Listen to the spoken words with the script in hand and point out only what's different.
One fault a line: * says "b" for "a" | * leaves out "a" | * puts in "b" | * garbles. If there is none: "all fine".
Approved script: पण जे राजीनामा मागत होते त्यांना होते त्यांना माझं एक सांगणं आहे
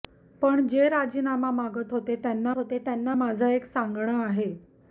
all fine